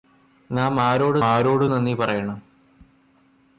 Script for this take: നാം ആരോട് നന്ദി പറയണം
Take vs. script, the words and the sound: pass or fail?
fail